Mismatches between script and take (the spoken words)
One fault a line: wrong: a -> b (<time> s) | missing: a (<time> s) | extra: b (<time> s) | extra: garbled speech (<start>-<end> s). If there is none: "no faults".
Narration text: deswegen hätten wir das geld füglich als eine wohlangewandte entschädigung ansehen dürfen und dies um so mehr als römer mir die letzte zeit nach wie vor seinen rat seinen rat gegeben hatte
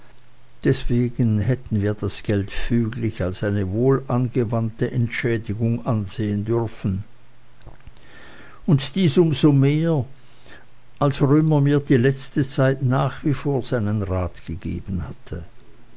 missing: seinen rat (14.4 s)